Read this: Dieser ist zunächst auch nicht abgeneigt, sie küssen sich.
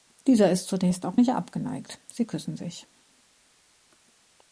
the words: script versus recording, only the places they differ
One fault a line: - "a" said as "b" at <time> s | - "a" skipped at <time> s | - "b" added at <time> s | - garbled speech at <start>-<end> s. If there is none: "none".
none